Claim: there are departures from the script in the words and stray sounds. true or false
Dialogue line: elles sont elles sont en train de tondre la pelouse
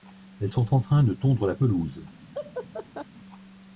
true